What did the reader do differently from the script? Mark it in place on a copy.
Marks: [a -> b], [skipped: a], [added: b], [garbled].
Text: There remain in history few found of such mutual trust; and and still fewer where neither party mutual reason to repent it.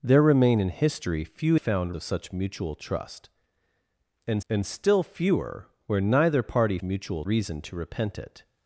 There remain in history few found of such mutual trust; and and still fewer where neither party mutual reason to repent it.